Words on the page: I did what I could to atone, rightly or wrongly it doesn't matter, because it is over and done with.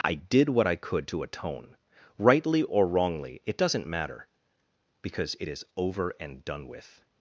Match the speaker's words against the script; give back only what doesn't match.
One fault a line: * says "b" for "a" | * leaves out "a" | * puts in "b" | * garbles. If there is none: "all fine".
all fine